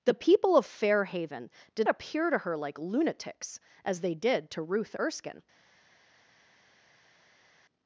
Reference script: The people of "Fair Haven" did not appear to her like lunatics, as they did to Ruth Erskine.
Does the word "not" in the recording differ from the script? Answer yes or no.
yes